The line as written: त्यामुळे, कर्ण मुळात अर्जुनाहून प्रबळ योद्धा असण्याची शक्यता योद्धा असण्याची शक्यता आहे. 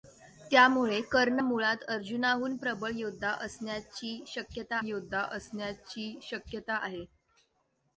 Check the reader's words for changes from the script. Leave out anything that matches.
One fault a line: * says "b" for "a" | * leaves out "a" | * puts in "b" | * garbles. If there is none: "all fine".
all fine